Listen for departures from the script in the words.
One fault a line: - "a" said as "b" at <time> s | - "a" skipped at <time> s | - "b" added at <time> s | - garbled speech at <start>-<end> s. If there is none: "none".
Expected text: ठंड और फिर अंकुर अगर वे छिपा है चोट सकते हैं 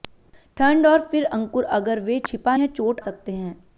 none